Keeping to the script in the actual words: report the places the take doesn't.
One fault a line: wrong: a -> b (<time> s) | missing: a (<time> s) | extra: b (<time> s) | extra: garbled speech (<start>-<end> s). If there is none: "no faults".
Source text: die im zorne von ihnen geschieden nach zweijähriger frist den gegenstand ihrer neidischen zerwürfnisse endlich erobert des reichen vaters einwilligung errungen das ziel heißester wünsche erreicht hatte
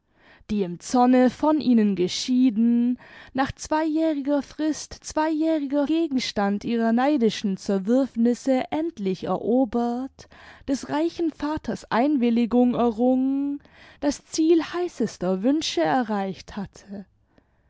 wrong: den -> zweijähriger (5.0 s)